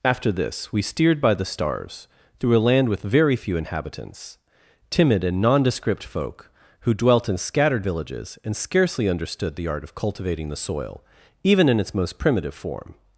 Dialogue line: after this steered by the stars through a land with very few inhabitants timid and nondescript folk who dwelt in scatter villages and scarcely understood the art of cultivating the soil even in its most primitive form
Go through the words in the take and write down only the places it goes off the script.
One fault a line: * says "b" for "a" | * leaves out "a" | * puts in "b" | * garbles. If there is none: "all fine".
* puts in "we"
* says "scattered" for "scatter"